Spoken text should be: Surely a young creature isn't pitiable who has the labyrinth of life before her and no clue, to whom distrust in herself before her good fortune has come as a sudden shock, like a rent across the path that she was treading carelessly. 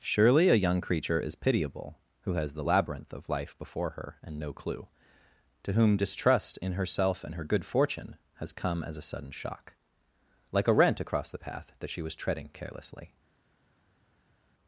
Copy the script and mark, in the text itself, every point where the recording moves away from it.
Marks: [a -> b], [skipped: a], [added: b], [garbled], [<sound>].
Surely a young creature [isn't -> is] pitiable who has the labyrinth of life before her and no clue, to whom distrust in herself [before -> and] her good fortune has come as a sudden shock, like a rent across the path that she was treading carelessly.